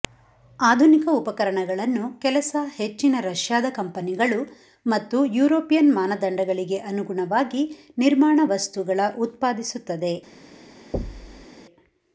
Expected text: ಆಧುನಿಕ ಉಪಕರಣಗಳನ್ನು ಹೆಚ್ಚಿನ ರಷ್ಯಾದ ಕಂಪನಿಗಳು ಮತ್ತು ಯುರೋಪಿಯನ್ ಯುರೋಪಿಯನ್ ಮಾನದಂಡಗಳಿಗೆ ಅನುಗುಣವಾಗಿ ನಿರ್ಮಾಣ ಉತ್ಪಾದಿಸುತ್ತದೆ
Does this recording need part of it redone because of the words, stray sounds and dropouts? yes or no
yes